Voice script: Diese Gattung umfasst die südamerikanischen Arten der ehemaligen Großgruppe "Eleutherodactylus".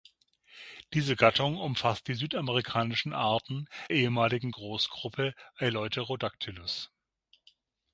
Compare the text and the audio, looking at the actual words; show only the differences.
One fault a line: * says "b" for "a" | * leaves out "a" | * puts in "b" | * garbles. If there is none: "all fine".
* leaves out "der"